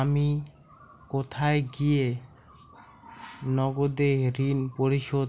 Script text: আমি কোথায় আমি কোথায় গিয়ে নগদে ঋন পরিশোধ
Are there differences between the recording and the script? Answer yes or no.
yes